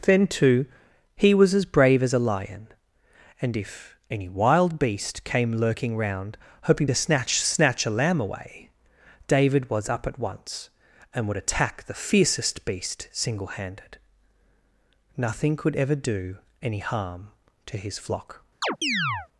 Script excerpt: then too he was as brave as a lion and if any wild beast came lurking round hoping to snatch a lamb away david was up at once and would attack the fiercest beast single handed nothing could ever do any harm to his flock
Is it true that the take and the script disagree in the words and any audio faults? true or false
true